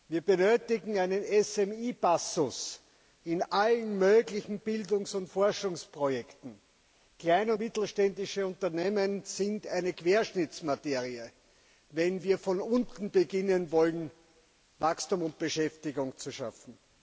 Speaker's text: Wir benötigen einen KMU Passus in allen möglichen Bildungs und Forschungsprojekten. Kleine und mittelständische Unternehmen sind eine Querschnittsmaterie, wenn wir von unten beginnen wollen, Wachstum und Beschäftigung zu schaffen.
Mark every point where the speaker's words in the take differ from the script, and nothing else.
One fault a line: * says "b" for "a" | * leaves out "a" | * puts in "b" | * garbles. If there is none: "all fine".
* leaves out "und"